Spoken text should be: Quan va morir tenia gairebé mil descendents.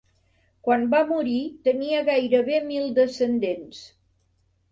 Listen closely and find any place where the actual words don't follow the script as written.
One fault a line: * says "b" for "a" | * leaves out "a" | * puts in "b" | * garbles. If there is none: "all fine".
all fine